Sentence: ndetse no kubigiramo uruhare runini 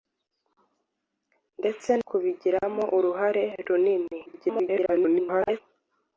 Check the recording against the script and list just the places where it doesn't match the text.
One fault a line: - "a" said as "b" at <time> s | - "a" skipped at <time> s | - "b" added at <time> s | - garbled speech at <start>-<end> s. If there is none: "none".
- "no" skipped at 1.9 s
- garbled speech at 4.3-5.6 s